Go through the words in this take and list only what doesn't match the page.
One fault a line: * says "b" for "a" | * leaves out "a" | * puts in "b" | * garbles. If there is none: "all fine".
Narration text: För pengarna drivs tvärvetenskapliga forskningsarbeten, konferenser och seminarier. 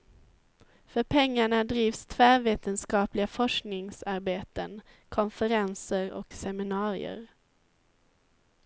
all fine